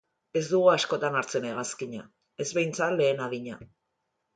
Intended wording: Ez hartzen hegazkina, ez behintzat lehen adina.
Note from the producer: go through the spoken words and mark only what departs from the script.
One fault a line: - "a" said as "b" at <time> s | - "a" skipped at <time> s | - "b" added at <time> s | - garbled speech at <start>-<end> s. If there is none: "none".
- "dugu askotan" added at 0.5 s